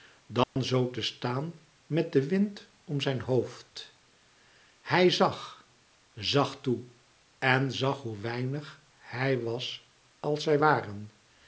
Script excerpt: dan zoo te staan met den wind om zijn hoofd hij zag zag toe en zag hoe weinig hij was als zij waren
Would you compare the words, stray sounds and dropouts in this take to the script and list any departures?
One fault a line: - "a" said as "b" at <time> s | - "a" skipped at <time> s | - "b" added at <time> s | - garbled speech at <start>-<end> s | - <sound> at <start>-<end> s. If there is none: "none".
- dropout at 0.4-0.6 s